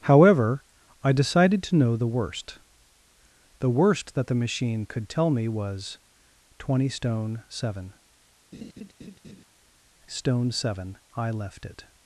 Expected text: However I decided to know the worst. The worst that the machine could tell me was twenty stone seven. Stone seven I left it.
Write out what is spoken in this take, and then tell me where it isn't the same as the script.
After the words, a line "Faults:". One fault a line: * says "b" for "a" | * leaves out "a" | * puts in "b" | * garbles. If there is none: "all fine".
However I decided to know the worst. The worst that the machine could tell me was twenty stone seven. Stone seven I left it.
Faults:
all fine